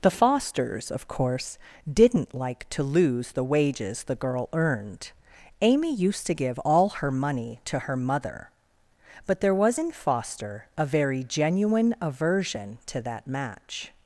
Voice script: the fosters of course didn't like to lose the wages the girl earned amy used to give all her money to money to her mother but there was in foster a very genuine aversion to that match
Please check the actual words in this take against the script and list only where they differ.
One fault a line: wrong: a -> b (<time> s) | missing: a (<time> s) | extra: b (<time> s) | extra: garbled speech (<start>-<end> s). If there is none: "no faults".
missing: money to (7.8 s)